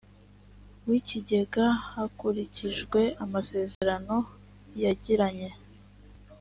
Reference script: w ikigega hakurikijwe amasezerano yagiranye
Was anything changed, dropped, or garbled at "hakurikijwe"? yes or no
no